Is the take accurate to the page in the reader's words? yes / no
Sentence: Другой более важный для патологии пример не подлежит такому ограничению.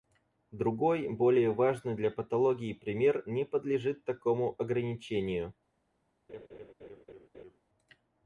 yes